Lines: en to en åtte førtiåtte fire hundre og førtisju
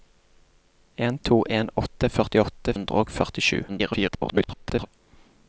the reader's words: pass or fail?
fail